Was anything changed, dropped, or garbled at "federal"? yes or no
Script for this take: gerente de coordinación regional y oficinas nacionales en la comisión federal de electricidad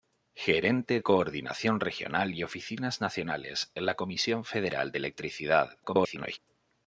no